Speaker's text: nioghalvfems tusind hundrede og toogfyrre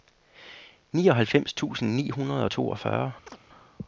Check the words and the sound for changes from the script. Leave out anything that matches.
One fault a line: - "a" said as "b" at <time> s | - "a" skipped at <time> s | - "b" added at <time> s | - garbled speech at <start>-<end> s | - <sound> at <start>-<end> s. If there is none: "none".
- "ni" added at 1.9 s
- chirp at 3.3-3.4 s